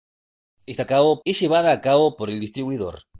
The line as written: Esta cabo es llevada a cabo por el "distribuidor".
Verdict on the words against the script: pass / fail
pass